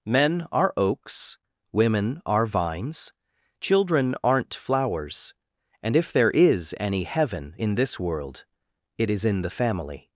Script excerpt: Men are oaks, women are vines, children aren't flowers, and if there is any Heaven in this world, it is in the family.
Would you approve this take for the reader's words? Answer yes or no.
yes